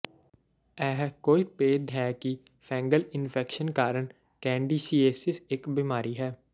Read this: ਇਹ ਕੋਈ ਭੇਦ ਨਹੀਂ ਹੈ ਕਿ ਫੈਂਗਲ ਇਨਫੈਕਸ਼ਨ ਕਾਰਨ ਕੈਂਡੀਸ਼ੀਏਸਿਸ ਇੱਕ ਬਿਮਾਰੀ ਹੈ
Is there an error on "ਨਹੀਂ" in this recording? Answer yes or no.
yes